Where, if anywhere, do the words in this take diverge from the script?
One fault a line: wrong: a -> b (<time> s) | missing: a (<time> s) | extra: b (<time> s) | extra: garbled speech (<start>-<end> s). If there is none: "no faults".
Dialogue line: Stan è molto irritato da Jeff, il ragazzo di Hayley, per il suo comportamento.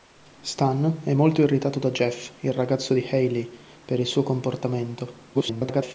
extra: garbled speech (5.3-5.9 s)